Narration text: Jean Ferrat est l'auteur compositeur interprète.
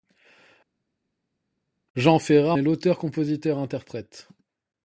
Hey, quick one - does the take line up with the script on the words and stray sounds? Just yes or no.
yes